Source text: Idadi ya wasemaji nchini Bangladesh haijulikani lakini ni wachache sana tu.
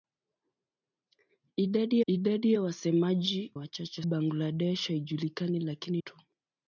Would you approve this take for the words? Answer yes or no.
no